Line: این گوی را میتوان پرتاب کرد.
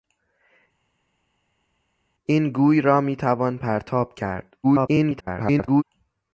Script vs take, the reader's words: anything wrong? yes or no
yes